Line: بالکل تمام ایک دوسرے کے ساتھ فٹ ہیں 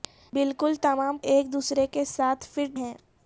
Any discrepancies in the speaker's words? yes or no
no